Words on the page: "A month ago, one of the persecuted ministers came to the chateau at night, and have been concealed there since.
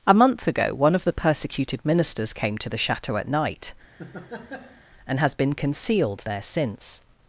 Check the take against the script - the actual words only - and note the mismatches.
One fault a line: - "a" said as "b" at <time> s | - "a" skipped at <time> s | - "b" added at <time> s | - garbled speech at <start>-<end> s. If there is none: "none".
- "have" said as "has" at 5.2 s